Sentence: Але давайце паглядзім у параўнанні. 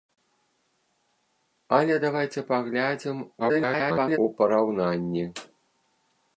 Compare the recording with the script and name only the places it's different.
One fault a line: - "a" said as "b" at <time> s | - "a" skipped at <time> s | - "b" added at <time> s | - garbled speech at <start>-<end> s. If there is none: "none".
- garbled speech at 3.4-4.2 s